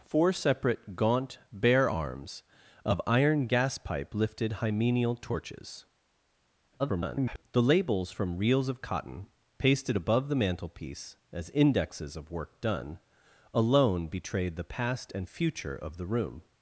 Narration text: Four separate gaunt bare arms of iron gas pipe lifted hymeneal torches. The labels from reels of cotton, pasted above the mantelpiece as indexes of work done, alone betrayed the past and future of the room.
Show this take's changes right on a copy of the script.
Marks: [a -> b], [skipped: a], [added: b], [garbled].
Four separate gaunt bare arms of iron gas pipe lifted hymeneal torches. [garbled] The labels from reels of cotton, pasted above the mantelpiece as indexes of work done, alone betrayed the past and future of the room.